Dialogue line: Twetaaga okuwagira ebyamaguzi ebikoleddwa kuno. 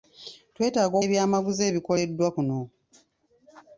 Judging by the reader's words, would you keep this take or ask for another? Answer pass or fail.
fail